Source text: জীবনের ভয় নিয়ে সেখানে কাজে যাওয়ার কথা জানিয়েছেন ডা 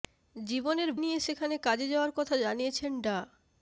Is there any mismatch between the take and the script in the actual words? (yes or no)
yes